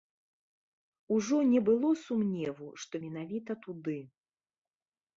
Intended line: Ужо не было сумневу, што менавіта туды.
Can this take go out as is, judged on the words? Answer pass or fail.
pass